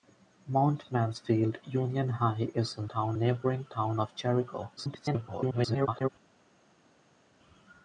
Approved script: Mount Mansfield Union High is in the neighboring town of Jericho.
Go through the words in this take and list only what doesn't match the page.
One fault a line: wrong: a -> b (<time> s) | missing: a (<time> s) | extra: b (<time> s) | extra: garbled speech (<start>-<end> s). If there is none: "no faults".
wrong: the -> town (2.8 s)
extra: garbled speech (4.8-6.1 s)